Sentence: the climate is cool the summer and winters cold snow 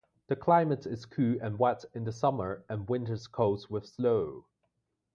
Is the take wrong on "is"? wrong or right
right